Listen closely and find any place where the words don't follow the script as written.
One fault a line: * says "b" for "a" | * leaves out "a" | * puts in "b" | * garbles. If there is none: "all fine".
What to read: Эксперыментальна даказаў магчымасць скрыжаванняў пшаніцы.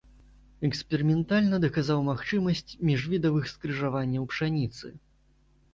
* puts in "міжвідавых"